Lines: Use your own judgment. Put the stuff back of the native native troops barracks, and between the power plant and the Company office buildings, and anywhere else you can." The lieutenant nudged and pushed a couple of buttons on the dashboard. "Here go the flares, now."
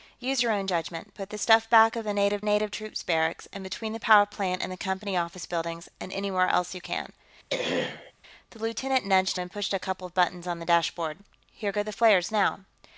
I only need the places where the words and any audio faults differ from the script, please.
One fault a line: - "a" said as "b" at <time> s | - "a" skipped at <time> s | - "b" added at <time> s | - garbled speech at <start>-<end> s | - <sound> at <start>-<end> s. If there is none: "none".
- throat clearing at 7.5-8.1 s